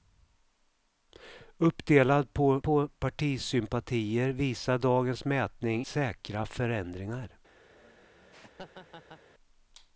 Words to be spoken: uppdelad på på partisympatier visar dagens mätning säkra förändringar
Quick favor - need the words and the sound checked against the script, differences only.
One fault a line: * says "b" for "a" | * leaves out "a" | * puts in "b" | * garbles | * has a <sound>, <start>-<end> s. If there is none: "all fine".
* has a laugh, 7.7-9.2 s